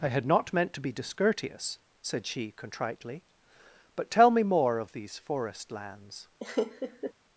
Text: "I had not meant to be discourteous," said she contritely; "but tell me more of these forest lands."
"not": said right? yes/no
yes